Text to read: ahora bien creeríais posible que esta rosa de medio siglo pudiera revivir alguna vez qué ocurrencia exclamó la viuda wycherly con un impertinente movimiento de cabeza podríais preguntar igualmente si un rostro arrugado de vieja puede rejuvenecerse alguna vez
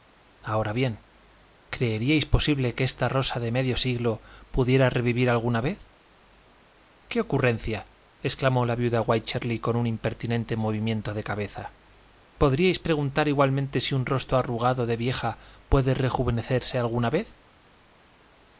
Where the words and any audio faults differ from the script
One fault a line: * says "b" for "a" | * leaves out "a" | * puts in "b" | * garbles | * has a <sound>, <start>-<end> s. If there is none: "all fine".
all fine